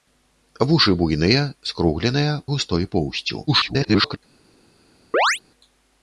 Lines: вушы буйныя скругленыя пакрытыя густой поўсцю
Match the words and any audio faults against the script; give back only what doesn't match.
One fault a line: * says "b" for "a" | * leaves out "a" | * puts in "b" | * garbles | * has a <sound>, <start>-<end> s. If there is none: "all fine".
* leaves out "пакрытыя"
* garbles
* has a chirp, 5.1-5.4 s